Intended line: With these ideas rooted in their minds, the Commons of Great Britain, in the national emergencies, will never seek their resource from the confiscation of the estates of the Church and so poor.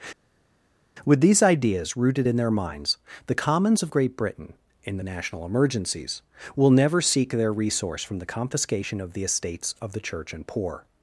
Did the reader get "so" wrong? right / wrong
wrong